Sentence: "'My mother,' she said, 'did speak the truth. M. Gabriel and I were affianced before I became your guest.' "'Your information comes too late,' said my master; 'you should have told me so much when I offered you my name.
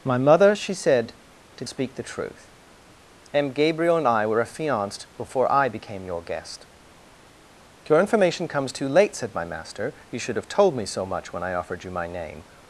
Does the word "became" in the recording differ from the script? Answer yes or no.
no